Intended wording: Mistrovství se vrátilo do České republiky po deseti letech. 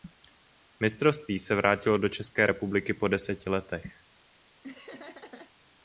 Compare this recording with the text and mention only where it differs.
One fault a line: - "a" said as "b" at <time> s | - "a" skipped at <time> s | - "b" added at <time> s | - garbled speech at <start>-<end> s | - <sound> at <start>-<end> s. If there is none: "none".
- laugh at 4.6-5.5 s